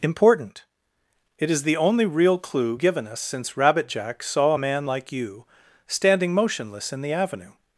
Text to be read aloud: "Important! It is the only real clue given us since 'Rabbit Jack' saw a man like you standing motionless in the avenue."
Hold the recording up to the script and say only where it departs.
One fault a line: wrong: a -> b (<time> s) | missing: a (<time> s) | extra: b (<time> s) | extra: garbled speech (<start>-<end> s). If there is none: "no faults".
no faults